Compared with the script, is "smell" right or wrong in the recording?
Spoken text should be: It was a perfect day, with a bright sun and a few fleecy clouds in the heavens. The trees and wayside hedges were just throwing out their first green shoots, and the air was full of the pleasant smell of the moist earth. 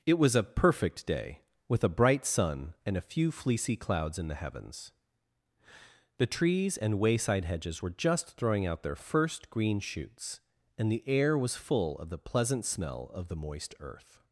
right